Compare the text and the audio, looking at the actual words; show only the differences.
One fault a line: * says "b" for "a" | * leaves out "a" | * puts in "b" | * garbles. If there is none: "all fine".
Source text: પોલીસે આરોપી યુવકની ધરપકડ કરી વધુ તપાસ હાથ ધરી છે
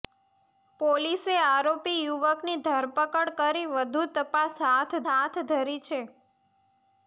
* puts in "હાથ"